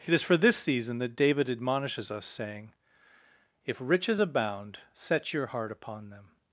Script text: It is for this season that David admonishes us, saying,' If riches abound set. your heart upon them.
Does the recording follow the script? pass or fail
pass